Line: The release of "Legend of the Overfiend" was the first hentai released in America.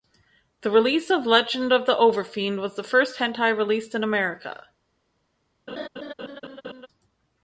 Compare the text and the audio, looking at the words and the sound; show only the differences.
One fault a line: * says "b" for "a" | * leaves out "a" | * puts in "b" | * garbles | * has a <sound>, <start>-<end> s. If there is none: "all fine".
* has a laugh, 5.7-6.9 s